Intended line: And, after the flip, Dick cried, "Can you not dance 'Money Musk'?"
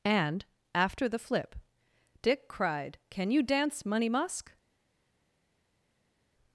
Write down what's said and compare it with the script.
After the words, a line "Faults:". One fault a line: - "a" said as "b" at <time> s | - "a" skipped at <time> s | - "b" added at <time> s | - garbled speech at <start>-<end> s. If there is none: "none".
And, after the flip, Dick cried, "Can you dance 'Money Musk'?"
Faults:
- "not" skipped at 3.4 s